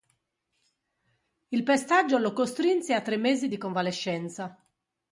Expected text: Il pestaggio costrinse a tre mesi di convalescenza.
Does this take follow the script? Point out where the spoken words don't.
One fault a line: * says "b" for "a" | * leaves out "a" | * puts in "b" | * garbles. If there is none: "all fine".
* puts in "lo"